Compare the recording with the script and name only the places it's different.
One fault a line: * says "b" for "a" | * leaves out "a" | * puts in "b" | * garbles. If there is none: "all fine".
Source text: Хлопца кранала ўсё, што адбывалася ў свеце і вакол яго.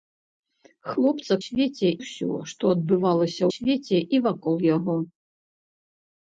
* says "свеце" for "кранала"
* leaves out "ў"